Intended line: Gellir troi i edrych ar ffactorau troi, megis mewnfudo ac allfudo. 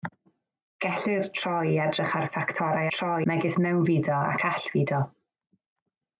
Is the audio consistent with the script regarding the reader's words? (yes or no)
yes